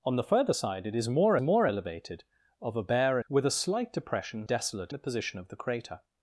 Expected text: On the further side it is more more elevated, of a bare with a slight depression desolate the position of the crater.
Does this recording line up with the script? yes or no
yes